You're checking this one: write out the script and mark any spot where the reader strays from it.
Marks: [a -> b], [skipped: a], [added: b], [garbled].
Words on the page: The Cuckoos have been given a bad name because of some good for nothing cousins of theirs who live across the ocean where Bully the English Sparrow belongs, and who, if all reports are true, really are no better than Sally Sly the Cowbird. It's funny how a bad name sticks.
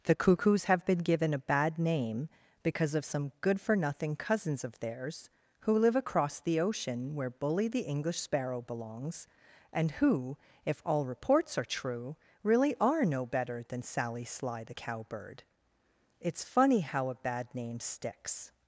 The Cuckoos have been given a bad name because of some good for nothing cousins of theirs who live across the ocean where Bully the English Sparrow belongs, and who, if all reports are true, really are no better than Sally Sly the Cowbird. It's funny how a bad name sticks.